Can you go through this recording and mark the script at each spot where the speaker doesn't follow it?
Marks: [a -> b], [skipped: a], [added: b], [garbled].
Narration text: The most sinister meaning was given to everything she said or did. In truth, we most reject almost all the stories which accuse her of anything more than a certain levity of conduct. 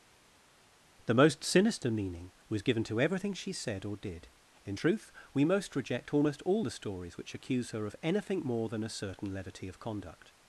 The most sinister meaning was given to everything she said or did. In truth, we most reject almost all the stories which accuse her of anything more than a certain levity of conduct.